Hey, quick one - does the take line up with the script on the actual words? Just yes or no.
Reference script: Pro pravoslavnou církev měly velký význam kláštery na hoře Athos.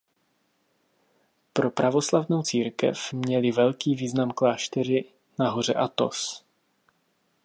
yes